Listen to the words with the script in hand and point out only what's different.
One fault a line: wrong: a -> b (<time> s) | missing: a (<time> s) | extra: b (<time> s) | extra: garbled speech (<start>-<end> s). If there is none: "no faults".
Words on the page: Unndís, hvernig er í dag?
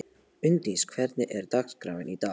extra: dagskráin (1.6 s)